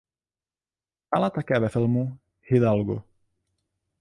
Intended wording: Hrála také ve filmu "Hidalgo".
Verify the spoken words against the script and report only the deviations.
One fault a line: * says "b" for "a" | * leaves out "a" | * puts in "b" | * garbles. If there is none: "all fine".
all fine